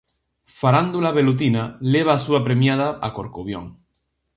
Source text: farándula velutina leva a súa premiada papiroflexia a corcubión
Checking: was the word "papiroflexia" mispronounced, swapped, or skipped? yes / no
yes